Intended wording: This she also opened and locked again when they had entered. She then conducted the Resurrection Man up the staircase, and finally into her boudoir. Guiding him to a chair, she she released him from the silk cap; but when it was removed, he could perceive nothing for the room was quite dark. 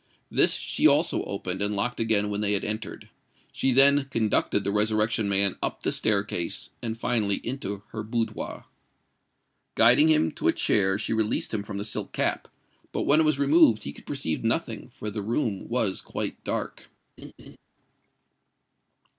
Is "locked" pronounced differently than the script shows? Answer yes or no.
no